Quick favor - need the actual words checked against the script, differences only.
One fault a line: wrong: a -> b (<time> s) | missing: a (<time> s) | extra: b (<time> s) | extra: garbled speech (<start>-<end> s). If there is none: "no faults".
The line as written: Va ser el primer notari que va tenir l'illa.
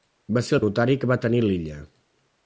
missing: primer (0.6 s)